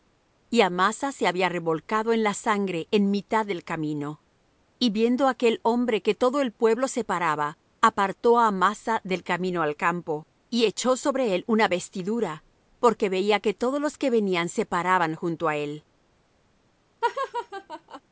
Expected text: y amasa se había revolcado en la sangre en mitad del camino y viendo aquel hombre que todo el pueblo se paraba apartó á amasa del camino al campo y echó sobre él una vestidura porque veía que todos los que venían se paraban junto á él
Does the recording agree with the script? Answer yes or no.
yes